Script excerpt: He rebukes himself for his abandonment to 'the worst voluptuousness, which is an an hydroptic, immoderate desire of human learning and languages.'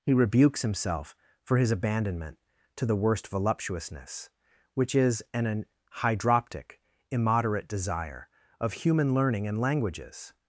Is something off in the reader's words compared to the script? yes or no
no